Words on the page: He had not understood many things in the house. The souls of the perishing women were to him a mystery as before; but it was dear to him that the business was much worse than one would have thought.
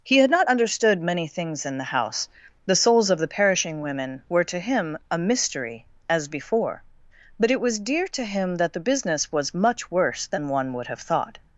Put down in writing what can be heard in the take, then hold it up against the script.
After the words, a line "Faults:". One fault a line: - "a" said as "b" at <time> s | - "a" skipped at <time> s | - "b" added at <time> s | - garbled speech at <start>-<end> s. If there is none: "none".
He had not understood many things in the house. The souls of the perishing women were to him a mystery as before; but it was dear to him that the business was much worse than one would have thought.
Faults:
none